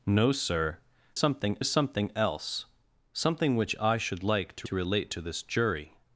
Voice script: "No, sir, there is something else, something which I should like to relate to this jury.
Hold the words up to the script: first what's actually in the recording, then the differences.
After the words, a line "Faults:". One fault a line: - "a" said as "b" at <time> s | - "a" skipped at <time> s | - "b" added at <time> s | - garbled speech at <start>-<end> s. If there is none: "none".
"No, sir, something is something else, something which I should like to to relate to this jury.
Faults:
- "there" said as "something" at 1.2 s
- "to" added at 4.6 s